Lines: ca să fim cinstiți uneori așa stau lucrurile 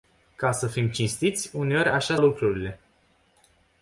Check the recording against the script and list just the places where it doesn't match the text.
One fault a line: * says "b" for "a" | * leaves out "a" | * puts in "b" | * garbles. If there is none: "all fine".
* leaves out "stau"